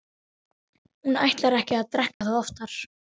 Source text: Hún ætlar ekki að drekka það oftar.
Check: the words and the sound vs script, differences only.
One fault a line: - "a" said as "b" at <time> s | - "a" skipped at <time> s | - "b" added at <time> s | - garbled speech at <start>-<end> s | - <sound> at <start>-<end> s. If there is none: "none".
- dropout at 2.1-2.2 s